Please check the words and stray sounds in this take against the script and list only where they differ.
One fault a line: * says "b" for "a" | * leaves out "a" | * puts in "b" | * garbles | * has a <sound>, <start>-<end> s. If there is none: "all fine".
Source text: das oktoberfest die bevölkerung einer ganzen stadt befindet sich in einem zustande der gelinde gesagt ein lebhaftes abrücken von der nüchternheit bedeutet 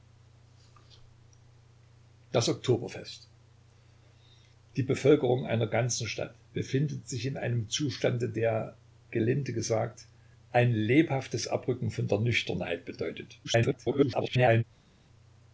* garbles